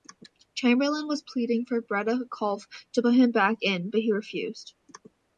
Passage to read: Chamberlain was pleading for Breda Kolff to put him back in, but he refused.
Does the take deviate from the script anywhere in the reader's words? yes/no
no